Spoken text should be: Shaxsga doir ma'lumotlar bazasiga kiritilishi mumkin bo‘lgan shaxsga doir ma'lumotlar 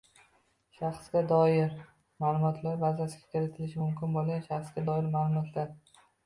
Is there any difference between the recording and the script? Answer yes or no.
no